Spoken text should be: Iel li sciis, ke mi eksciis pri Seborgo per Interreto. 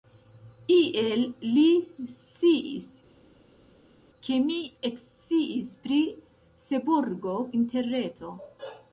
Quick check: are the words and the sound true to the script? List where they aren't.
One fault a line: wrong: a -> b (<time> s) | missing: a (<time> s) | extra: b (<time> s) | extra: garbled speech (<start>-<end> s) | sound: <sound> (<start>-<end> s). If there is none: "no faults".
missing: per (7.4 s)